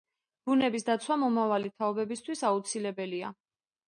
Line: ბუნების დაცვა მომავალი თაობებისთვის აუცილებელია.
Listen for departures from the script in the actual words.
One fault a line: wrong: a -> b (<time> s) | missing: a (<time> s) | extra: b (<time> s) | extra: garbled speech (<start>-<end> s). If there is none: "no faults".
no faults